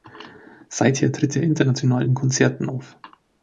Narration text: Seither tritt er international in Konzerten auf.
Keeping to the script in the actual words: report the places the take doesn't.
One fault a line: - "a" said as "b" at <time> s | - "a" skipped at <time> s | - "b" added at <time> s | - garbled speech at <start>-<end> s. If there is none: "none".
none